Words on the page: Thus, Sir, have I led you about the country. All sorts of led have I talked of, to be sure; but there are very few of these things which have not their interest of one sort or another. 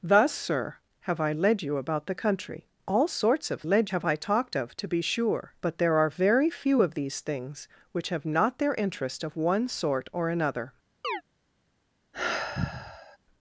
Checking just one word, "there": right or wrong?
right